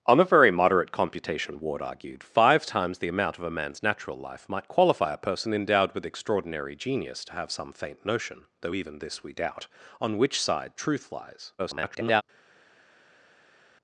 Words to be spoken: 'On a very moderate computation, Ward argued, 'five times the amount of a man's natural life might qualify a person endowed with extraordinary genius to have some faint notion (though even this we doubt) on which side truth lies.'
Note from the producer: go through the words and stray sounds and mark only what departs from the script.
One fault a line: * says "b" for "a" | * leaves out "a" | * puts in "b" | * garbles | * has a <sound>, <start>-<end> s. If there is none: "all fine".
* garbles